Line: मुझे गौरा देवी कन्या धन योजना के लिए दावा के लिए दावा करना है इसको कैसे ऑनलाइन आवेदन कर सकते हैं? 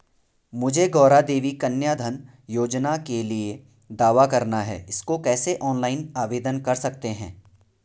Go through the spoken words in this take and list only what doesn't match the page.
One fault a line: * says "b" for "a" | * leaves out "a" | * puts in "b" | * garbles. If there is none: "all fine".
* leaves out "के लिए दावा"